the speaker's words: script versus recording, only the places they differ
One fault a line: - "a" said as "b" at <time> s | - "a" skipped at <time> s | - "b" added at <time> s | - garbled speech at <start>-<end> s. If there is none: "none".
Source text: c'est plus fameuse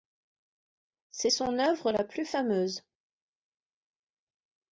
- "son œuvre la" added at 1.3 s